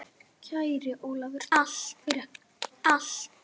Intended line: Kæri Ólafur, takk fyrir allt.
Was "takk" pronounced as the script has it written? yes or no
no